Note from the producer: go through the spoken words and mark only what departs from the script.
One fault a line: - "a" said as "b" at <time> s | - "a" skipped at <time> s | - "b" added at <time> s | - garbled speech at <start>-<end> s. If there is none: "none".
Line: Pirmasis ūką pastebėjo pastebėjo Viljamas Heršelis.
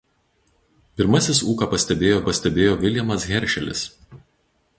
none